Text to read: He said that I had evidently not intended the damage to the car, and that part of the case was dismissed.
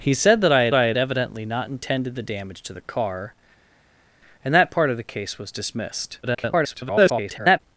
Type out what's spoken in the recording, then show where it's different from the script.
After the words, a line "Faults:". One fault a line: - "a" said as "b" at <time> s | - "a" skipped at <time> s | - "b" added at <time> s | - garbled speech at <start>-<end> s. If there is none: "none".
He said that I had I had evidently not intended the damage to the car, and that part of the case was dismissed. [garbled]
Faults:
- "I had" added at 0.7 s
- garbled speech at 6.2-7.6 s